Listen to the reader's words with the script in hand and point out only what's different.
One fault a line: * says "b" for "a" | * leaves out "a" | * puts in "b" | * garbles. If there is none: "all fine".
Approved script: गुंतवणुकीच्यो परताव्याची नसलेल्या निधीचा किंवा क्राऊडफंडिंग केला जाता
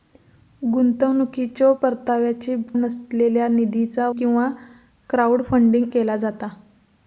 all fine